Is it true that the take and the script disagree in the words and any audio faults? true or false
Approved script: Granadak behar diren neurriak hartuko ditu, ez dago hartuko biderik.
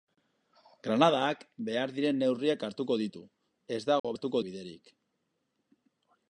true